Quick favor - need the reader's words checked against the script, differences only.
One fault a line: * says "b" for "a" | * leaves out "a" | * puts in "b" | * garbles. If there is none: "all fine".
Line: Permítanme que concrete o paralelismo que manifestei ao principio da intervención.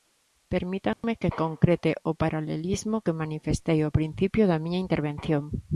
* puts in "miña"